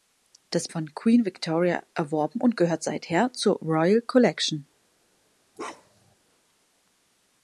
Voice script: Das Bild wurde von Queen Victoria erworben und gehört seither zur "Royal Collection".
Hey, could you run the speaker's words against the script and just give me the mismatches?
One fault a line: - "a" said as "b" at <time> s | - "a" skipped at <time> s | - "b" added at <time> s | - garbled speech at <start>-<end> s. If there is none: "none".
- "Bild wurde" skipped at 0.7 s